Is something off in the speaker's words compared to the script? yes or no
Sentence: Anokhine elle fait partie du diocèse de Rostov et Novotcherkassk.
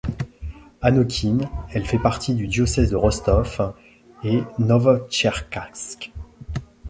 no